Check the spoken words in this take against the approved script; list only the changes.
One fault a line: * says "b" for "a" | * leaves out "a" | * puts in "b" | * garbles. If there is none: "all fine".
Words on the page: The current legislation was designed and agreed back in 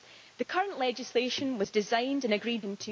* leaves out "back"